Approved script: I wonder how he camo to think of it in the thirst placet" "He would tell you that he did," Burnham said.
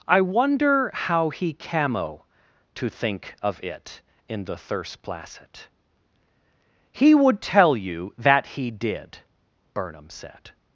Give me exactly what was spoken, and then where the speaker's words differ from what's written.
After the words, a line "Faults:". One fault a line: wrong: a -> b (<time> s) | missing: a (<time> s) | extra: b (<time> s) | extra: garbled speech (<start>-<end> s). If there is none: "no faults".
I wonder how he camo to think of it in the thirst placet" "He would tell you that he did," Burnham said.
Faults:
no faults